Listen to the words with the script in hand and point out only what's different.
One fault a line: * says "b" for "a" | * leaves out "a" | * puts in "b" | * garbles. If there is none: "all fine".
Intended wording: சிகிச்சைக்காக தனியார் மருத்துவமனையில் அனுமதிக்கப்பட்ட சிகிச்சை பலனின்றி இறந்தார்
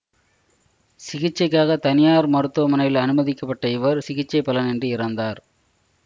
* puts in "இவர்"